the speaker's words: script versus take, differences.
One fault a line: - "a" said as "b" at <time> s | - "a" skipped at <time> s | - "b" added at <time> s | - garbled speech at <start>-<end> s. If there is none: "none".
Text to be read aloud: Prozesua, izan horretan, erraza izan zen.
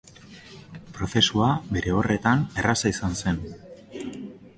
- "izan" said as "bere" at 1.8 s